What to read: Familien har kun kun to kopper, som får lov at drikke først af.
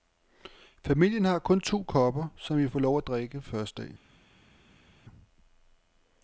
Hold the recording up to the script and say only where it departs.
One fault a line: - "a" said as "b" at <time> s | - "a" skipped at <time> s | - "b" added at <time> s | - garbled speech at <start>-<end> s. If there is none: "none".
- "kun" skipped at 1.6 s
- "vi" added at 2.6 s